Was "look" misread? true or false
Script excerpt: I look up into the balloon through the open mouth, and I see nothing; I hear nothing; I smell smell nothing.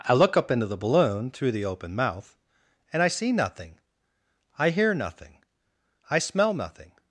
false